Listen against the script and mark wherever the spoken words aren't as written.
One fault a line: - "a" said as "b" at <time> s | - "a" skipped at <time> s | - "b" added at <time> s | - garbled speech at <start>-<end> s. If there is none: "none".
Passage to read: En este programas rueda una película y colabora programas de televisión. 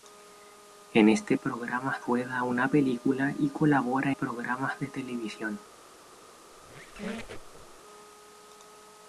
none